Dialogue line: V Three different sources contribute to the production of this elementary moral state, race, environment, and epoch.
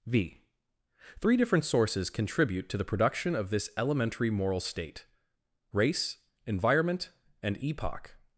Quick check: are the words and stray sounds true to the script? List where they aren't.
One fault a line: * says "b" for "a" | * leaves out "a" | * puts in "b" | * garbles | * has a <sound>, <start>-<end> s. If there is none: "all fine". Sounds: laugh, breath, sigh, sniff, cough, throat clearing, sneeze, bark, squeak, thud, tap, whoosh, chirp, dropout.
all fine